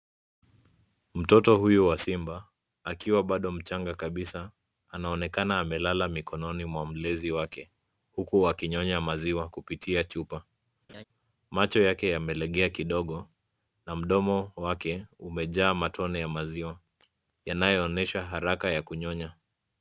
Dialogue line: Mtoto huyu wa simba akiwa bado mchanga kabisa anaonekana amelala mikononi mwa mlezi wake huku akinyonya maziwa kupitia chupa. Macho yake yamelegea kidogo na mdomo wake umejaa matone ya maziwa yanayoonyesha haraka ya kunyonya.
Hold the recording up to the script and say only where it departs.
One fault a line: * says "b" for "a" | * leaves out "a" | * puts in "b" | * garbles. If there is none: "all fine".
all fine